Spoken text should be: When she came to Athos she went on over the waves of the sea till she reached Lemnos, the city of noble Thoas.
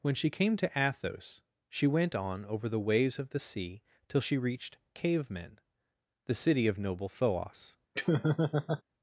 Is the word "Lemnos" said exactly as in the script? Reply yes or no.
no